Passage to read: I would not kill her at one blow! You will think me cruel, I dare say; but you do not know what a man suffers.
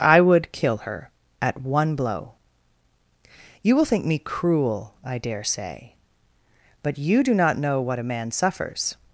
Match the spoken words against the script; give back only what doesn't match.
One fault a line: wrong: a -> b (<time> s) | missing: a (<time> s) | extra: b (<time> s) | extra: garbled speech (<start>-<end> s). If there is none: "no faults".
missing: not (0.5 s)